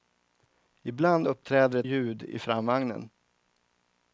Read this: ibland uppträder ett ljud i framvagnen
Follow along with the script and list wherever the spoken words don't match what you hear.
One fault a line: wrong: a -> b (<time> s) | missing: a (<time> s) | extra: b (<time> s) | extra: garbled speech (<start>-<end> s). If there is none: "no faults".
no faults